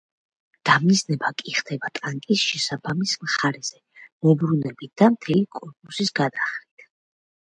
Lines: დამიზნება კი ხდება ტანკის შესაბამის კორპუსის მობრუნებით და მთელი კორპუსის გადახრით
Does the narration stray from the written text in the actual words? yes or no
yes